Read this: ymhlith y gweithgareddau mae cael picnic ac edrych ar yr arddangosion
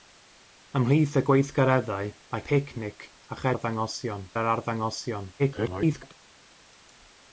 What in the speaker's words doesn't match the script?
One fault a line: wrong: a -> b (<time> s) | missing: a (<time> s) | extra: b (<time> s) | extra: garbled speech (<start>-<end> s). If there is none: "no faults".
missing: cael (2.5 s)
wrong: edrych -> arddangosion (3.5 s)
extra: garbled speech (5.4-6.1 s)